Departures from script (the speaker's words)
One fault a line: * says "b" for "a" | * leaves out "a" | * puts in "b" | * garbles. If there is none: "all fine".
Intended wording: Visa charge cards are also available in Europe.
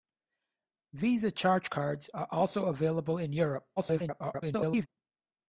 * garbles